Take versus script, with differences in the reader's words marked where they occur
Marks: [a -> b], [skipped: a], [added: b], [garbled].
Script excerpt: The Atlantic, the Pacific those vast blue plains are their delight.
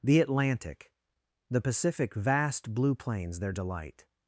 The Atlantic, the Pacific [skipped: those] vast blue plains [skipped: are] their delight.